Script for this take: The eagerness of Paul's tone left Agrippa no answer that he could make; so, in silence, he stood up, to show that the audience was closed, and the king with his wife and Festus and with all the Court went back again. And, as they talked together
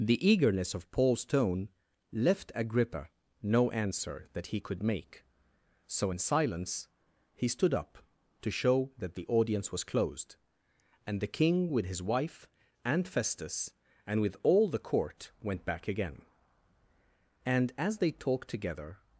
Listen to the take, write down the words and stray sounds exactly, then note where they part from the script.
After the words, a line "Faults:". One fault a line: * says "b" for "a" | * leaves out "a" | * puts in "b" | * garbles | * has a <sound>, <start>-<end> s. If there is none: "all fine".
The eagerness of Paul's tone left Agrippa no answer that he could make; so, in silence, he stood up, to show that the audience was closed, and the king with his wife and Festus and with all the Court went back again. And, as they talked together
Faults:
all fine